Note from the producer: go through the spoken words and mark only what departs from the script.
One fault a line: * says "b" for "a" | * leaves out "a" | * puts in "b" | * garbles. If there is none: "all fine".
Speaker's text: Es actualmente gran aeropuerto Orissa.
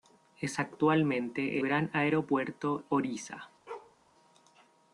all fine